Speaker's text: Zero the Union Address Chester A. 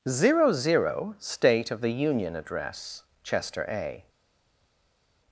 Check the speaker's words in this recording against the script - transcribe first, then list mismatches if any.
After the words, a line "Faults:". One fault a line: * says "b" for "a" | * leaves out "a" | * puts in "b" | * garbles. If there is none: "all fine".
Zero zero State of the Union Address Chester A.
Faults:
* puts in "zero State of"